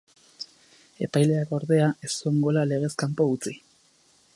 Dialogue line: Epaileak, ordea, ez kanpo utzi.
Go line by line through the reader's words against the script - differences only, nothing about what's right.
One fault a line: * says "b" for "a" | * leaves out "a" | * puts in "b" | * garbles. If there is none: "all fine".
* puts in "zuen gola legez"